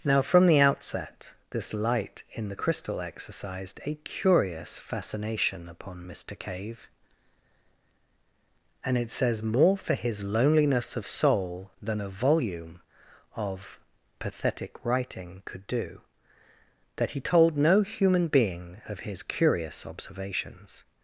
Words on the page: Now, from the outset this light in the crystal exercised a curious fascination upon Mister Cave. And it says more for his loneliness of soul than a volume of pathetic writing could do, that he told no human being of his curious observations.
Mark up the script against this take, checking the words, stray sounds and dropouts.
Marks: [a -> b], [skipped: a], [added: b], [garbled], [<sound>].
Now, from the outset this light in the crystal exercised a curious fascination upon Mister Cave. And it says more for his loneliness of soul than a volume of pathetic writing could do, that he told no human being of his curious observations.